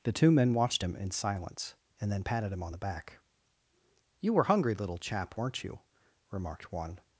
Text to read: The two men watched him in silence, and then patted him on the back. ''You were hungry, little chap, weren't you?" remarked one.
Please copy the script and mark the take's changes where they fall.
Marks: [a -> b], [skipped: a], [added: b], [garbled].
The two men watched him in silence, and then patted him on the back. ''You were hungry, little chap, weren't you?" remarked one.